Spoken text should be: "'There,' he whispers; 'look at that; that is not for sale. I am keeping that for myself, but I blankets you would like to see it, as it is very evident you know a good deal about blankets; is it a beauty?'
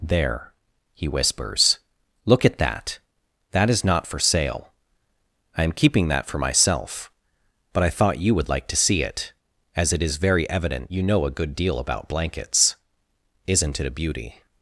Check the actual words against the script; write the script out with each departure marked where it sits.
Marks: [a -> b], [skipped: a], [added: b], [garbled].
"'There,' he whispers; 'look at that; that is not for sale. I am keeping that for myself, but I [blankets -> thought] you would like to see it, as it is very evident you know a good deal about blankets; [is -> isn't] it a beauty?'